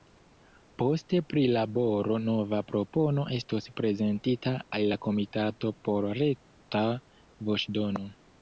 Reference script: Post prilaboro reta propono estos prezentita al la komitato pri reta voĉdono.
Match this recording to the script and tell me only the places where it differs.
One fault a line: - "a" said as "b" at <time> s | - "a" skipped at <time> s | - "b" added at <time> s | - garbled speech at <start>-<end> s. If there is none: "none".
- "reta" said as "nova" at 2.2 s
- "pri" said as "por" at 5.9 s